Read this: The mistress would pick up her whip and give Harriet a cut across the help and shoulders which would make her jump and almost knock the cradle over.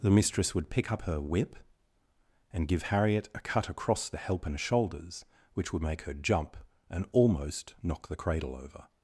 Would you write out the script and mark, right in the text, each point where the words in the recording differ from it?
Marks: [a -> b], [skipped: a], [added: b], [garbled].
The mistress would pick up her whip and give Harriet a cut across the help and shoulders which would make her jump and almost knock the cradle over.